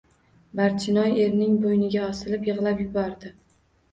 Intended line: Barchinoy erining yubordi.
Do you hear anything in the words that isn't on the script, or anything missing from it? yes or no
yes